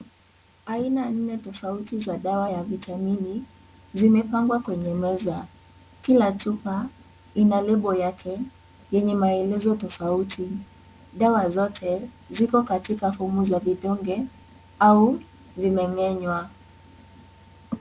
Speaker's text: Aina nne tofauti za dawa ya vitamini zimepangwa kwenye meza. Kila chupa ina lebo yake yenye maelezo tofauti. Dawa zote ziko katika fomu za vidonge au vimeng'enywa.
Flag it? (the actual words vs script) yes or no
no